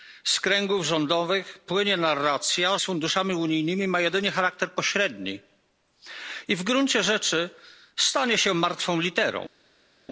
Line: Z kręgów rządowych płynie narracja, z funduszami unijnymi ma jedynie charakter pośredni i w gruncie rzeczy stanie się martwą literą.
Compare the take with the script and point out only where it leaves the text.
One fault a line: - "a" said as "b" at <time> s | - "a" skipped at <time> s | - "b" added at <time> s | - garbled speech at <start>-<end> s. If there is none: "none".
none